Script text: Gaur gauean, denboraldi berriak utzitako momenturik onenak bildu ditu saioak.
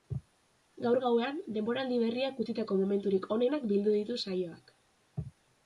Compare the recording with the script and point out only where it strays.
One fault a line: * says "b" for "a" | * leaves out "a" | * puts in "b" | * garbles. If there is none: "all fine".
all fine